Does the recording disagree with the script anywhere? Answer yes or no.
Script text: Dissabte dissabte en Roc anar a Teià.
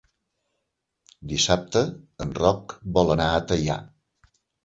yes